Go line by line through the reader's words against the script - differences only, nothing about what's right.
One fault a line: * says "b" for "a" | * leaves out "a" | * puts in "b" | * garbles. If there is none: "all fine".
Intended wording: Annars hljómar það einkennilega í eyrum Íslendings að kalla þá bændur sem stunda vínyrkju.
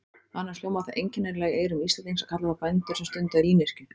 all fine